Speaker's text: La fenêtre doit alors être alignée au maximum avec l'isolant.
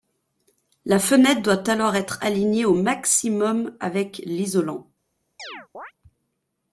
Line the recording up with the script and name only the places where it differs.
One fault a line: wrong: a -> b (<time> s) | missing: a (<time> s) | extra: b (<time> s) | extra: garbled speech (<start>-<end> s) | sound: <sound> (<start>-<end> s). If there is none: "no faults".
sound: chirp (5.4-5.9 s)